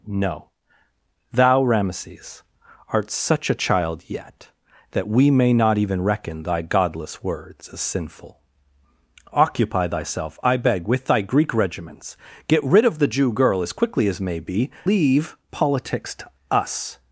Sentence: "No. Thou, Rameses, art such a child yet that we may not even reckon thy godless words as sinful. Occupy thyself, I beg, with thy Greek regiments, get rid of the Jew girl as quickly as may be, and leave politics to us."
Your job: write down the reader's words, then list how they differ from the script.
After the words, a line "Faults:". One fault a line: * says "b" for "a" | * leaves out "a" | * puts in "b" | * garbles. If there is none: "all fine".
"No. Thou, Rameses, art such a child yet that we may not even reckon thy godless words as sinful. Occupy thyself, I beg, with thy Greek regiments, get rid of the Jew girl as quickly as may be, leave politics to us."
Faults:
* leaves out "and"